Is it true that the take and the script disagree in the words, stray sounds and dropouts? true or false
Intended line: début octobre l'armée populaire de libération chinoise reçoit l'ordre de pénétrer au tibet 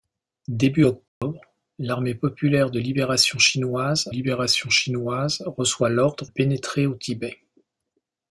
true